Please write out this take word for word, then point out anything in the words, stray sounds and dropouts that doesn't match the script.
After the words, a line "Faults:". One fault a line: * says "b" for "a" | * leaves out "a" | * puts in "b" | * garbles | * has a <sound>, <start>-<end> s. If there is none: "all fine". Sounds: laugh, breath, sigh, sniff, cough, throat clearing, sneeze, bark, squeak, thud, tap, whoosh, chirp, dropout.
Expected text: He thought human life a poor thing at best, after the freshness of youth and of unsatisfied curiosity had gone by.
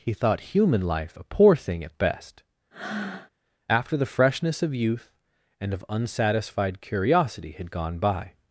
He thought human life a poor thing at best, after the freshness of youth and of unsatisfied curiosity had gone by.
Faults:
* has a breath, 2.7-3.3 s